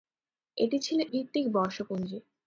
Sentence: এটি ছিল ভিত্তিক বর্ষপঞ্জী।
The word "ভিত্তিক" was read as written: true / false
true